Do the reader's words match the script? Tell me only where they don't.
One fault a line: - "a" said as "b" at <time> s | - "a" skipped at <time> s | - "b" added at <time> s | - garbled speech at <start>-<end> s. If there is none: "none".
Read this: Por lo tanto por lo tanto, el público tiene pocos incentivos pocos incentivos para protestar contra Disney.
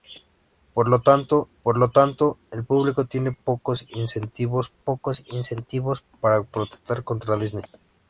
none